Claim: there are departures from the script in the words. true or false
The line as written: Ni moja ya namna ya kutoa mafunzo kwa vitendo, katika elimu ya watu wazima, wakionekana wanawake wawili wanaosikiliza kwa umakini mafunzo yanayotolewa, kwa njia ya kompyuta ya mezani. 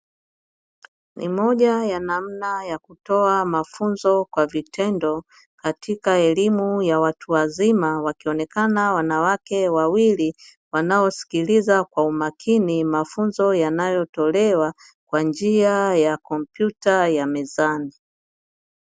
false